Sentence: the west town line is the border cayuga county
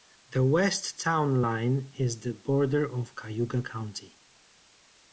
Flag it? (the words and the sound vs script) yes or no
yes